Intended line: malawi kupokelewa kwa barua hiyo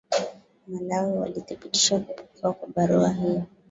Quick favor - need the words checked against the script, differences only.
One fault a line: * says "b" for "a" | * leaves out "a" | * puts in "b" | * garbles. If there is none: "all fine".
* puts in "walithibitisha"